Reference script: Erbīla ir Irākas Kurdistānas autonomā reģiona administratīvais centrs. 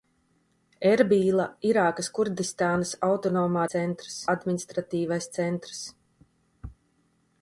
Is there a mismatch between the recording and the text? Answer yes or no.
yes